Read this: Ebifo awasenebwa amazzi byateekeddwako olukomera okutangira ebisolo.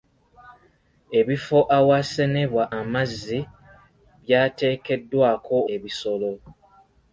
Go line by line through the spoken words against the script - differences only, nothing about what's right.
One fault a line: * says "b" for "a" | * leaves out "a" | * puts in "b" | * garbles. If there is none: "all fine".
* leaves out "olukomera okutangira"